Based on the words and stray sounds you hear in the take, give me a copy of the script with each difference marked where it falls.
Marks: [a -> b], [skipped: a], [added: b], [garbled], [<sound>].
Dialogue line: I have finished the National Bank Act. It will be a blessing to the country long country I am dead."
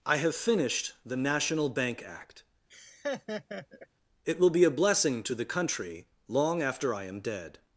I have finished the National Bank Act. [laugh] It will be a blessing to the country long [country -> after] I am dead."